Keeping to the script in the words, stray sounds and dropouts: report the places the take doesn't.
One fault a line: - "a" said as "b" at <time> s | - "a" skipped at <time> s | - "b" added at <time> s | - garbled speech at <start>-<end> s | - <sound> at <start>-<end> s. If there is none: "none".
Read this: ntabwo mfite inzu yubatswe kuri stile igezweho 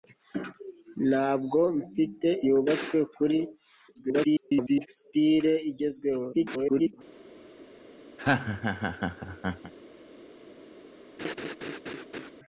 - "inzu" skipped at 2.3 s
- garbled speech at 3.9-4.9 s
- garbled speech at 6.3-6.9 s
- laugh at 8.2-9.7 s
- laugh at 11.2-12.3 s